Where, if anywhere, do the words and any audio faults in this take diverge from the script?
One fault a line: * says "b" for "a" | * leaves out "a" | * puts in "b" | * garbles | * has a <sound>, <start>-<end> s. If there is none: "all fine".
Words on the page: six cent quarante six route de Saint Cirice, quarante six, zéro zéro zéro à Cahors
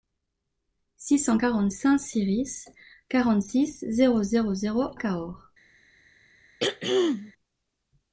* leaves out "six route de"
* leaves out "à"
* has a throat clearing, 6.6-7.3 s